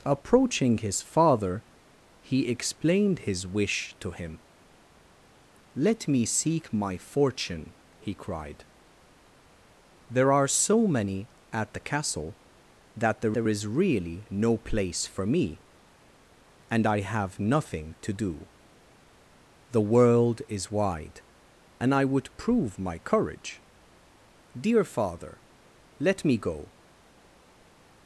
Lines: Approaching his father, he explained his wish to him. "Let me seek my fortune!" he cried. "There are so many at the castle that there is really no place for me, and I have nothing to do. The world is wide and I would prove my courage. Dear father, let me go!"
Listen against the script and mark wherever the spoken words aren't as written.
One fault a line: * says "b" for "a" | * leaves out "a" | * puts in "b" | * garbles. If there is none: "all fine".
* puts in "there"